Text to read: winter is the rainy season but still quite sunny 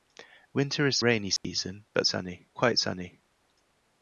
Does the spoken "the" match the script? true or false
false